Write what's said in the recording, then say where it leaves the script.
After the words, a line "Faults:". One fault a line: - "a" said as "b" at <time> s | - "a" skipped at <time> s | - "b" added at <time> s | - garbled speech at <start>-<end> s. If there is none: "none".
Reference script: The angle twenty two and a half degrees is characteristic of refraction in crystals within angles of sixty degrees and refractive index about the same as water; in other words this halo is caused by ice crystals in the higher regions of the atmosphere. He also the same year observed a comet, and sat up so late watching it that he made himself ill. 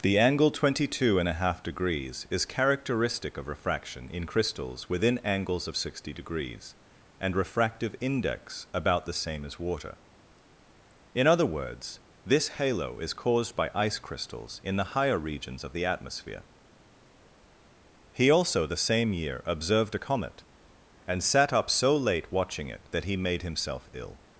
The angle twenty two and a half degrees is characteristic of refraction in crystals within angles of sixty degrees and refractive index about the same as water; in other words this halo is caused by ice crystals in the higher regions of the atmosphere. He also the same year observed a comet, and sat up so late watching it that he made himself ill.
Faults:
none